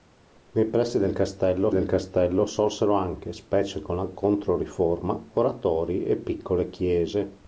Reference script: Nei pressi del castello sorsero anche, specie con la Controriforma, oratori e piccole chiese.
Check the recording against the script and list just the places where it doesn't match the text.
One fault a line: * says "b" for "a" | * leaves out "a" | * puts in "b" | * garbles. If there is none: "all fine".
* puts in "del castello"